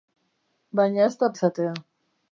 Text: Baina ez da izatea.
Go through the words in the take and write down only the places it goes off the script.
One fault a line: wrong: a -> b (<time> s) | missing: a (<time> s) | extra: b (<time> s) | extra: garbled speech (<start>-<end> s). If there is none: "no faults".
no faults